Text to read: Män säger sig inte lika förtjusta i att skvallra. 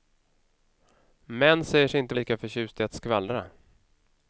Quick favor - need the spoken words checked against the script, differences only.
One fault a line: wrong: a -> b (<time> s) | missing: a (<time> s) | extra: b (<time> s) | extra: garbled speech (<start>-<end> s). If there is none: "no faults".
no faults